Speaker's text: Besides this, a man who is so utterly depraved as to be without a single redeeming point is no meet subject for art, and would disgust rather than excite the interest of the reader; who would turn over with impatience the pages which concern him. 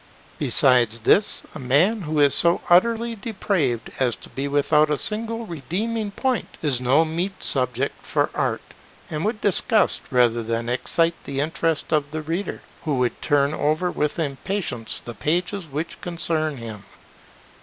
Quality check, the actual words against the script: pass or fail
pass